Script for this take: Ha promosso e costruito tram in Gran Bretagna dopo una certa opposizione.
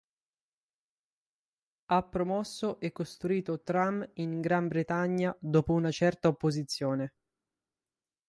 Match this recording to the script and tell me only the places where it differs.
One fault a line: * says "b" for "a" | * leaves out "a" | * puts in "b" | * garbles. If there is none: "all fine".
all fine